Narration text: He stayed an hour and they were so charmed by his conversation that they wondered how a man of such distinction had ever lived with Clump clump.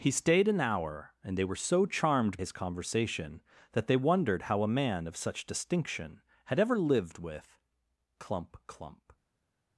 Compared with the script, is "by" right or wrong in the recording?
wrong